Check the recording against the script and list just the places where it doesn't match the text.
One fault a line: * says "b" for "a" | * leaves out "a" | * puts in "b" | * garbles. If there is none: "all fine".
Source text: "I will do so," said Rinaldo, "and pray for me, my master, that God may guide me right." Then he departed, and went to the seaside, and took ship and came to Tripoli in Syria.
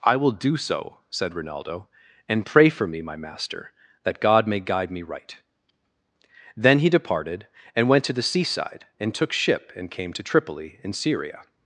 all fine